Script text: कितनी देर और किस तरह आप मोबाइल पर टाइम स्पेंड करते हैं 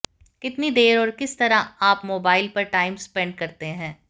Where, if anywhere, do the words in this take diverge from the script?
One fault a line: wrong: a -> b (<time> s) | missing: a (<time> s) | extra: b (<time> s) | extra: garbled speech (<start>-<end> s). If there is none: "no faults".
no faults